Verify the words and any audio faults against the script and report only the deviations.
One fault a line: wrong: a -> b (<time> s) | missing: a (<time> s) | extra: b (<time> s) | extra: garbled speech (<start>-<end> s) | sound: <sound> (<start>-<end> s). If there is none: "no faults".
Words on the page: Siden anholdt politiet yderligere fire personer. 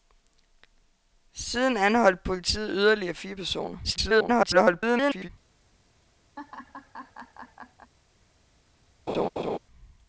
extra: garbled speech (3.8-5.3 s)
sound: laugh (6.4-7.9 s)
sound: laugh (9.1-9.6 s)